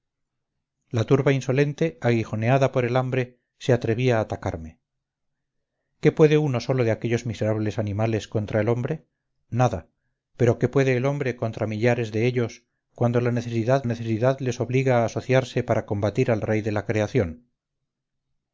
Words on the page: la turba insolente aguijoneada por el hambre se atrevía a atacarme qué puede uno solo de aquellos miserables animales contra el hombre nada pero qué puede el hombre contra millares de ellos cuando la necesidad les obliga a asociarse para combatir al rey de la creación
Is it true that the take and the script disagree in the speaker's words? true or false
true